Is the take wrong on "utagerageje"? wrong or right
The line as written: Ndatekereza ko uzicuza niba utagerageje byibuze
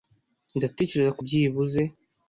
wrong